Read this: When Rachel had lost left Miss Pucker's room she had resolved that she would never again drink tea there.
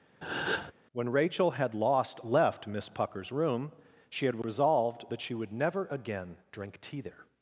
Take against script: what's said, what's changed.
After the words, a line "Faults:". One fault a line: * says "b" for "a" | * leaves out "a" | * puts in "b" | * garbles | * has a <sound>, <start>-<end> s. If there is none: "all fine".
When Rachel had lost left Miss Pucker's room she had resolved that she would never again drink tea there.
Faults:
* has a breath, 0.2-0.7 s